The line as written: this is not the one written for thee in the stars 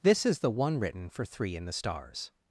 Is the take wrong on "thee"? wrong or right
wrong